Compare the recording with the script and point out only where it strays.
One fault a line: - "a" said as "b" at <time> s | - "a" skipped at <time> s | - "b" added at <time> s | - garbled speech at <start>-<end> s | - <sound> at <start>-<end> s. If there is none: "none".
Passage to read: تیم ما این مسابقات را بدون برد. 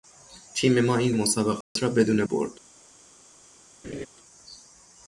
- dropout at 1.6-1.8 s
- laugh at 3.8-4.1 s